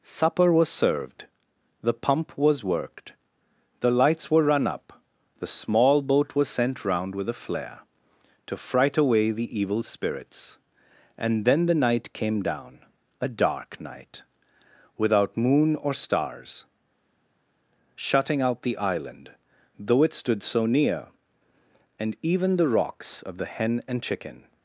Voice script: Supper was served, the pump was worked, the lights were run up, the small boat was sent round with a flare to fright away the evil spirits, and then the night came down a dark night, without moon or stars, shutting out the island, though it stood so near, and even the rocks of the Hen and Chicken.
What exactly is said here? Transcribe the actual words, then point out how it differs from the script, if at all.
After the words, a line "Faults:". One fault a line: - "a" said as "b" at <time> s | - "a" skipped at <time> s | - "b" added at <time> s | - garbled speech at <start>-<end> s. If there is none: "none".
Supper was served, the pump was worked, the lights were run up, the small boat was sent round with a flare to fright away the evil spirits, and then the night came down a dark night, without moon or stars, shutting out the island, though it stood so near, and even the rocks of the Hen and Chicken.
Faults:
none